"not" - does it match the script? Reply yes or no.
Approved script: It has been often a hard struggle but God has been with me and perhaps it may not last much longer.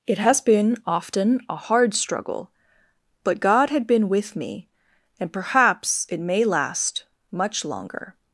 no